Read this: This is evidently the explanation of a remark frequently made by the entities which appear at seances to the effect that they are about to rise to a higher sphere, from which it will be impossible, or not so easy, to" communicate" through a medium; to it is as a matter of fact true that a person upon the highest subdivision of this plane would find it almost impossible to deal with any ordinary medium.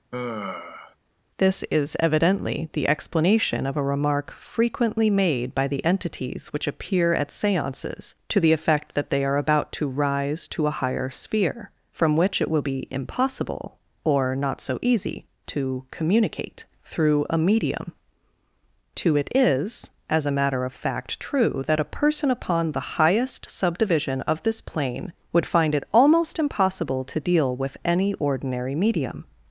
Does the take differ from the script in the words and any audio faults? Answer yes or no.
yes